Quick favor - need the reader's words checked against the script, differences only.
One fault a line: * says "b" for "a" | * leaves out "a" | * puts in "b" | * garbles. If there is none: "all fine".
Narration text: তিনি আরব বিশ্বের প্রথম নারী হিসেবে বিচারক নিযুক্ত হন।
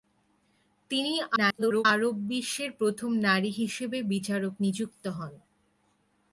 * garbles